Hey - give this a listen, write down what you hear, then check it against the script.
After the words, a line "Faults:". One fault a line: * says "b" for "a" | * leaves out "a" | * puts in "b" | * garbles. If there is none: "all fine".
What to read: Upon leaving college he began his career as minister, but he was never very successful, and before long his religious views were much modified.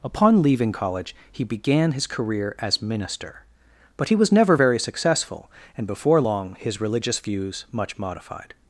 Upon leaving college he began his career as minister, but he was never very successful, and before long his religious views much modified.
Faults:
* leaves out "were"